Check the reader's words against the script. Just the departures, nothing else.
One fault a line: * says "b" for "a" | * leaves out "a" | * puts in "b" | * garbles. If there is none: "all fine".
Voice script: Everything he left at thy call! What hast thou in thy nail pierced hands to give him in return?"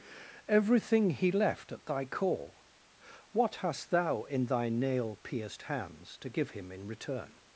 all fine